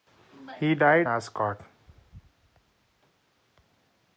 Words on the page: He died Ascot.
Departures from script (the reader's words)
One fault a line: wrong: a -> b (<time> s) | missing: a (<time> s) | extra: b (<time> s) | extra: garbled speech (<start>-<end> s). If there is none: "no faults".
no faults